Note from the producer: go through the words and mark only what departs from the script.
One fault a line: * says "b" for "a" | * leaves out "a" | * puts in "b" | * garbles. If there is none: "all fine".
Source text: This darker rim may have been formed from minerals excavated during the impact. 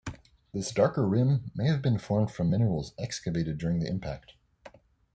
all fine